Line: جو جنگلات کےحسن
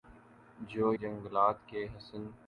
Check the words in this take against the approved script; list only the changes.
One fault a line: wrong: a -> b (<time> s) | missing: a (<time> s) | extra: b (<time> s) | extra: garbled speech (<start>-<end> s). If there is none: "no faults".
no faults